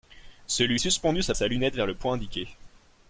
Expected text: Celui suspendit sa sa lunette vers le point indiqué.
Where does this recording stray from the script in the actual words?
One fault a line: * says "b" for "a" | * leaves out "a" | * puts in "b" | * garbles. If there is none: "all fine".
all fine